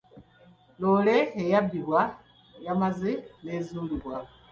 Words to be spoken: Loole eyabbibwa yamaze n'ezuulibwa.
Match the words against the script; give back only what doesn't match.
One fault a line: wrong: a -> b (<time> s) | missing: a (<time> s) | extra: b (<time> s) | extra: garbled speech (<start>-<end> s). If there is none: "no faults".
no faults